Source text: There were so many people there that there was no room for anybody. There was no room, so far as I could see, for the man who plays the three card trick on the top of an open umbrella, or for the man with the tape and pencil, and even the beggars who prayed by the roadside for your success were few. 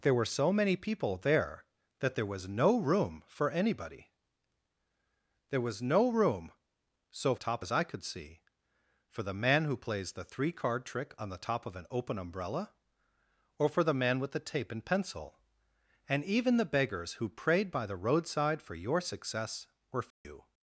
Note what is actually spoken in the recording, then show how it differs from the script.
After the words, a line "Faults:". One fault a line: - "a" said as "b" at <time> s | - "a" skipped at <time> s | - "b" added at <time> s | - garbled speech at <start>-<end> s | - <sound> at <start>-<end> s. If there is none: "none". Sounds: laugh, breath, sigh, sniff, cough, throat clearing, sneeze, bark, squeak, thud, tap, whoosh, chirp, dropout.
There were so many people there that there was no room for anybody. There was no room, so top as I could see, for the man who plays the three card trick on the top of an open umbrella, or for the man with the tape and pencil, and even the beggars who prayed by the roadside for your success were few.
Faults:
- "far" said as "top" at 7.4 s
- dropout at 20.1-20.3 s